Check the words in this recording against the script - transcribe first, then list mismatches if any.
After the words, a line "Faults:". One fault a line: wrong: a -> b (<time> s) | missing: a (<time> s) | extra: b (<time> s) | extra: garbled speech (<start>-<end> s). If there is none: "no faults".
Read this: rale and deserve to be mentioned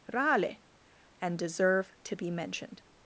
rale and deserve to be mentioned
Faults:
no faults